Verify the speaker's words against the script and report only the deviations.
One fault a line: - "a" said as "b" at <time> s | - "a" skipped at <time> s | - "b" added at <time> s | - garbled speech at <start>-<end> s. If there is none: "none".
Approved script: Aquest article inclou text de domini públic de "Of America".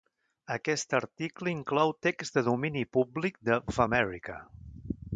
none